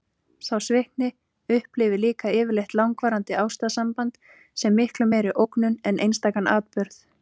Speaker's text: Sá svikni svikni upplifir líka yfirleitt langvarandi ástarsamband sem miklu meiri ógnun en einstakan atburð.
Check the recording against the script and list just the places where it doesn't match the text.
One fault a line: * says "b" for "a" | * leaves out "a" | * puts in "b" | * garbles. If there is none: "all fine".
* leaves out "svikni"